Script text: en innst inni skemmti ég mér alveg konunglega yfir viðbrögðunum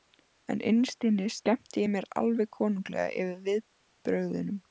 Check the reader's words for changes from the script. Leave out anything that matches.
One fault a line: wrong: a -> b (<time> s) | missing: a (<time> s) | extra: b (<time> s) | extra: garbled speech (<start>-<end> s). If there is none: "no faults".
no faults